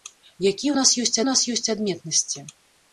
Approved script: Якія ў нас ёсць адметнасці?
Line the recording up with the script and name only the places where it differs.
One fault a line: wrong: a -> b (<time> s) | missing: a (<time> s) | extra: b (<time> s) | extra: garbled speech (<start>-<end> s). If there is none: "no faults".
extra: нас ёсць (1.3 s)